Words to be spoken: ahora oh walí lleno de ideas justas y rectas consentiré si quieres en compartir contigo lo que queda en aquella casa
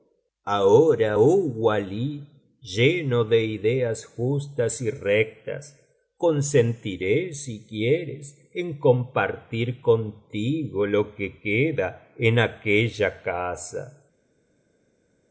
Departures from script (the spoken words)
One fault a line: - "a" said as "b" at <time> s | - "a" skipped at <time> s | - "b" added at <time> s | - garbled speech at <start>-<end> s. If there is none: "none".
none